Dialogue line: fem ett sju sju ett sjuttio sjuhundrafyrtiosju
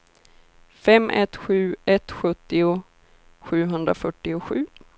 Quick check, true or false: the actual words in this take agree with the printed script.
false